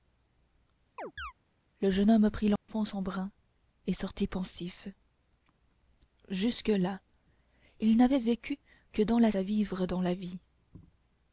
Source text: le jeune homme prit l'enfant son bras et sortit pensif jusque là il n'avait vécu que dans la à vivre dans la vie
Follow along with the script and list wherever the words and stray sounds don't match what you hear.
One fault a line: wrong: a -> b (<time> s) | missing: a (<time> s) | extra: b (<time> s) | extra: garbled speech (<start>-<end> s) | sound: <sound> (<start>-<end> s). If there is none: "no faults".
sound: chirp (1.0-1.3 s)
sound: dropout (2.6-2.7 s)